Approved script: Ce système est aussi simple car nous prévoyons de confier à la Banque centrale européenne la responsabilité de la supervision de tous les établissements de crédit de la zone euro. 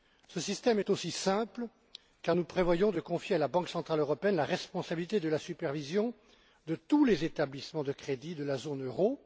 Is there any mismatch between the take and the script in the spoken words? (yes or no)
no